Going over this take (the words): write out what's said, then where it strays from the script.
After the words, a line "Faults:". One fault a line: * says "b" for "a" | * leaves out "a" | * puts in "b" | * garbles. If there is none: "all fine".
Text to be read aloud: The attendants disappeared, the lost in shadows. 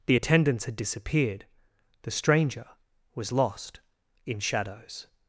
The attendants had disappeared, the stranger was lost in shadows.
Faults:
* puts in "had"
* puts in "stranger was"